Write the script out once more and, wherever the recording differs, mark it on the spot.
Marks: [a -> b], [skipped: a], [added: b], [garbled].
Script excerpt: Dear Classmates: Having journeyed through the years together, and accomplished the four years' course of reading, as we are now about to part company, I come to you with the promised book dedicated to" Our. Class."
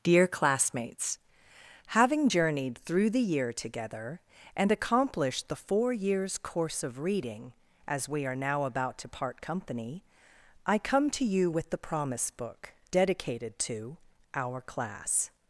Dear Classmates: Having journeyed through the [years -> year] together, and accomplished the four years' course of reading, as we are now about to part company, I come to you with the [promised -> promise] book dedicated to" Our. Class."